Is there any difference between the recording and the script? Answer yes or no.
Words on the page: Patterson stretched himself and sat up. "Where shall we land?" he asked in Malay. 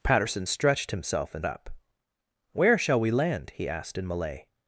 yes